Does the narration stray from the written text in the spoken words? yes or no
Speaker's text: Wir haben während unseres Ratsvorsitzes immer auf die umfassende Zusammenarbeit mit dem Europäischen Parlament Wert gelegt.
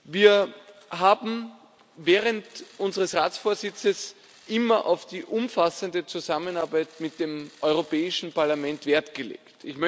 no